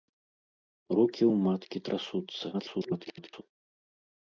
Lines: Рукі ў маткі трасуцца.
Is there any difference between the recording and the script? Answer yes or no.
yes